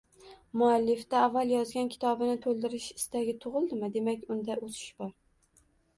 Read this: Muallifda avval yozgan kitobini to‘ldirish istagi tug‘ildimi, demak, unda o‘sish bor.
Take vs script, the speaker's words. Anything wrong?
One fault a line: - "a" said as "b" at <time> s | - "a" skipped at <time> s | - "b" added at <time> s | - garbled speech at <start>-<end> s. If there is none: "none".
none